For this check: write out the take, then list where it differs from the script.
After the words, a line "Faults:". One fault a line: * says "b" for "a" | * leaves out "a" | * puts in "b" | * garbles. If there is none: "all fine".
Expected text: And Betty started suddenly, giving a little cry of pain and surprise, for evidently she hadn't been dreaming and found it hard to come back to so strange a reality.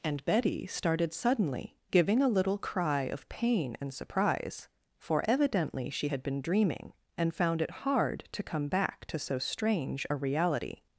And Betty started suddenly, giving a little cry of pain and surprise, for evidently she had been dreaming and found it hard to come back to so strange a reality.
Faults:
* says "had" for "hadn't"